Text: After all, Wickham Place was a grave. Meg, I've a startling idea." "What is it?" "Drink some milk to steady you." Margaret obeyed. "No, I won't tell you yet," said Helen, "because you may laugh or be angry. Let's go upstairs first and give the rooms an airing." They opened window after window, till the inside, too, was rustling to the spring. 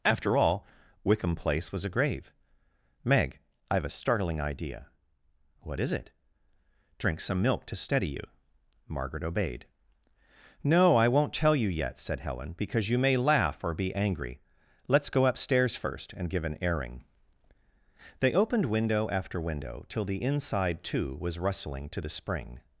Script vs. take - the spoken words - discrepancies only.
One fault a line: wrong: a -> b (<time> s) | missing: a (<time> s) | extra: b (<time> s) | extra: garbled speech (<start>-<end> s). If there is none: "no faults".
missing: the rooms (16.4 s)